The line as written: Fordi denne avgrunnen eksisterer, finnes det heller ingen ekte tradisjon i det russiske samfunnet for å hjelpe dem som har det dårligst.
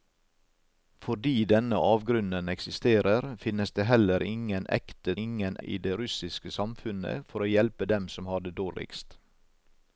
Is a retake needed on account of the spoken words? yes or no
yes